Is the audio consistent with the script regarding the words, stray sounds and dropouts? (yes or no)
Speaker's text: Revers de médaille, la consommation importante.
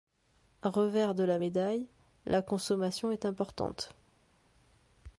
no